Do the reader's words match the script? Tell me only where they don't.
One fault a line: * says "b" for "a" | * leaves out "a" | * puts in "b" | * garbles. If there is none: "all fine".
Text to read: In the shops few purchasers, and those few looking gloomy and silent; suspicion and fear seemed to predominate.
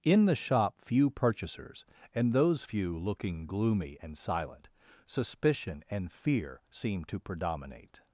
* says "shop" for "shops"